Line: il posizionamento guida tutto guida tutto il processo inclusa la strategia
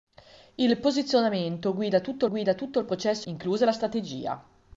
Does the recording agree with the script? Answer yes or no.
yes